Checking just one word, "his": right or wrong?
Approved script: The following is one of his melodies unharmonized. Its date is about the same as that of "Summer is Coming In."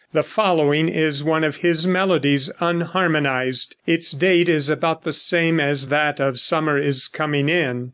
right